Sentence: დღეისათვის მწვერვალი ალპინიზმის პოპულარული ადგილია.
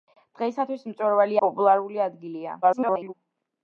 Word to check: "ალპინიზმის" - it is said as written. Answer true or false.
false